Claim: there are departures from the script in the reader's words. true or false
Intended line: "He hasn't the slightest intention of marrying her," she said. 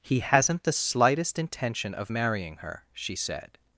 false